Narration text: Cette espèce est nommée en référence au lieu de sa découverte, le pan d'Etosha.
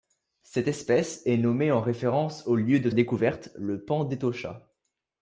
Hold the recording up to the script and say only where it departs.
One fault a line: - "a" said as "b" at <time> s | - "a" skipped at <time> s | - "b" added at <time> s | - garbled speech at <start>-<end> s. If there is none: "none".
- "sa" skipped at 2.9 s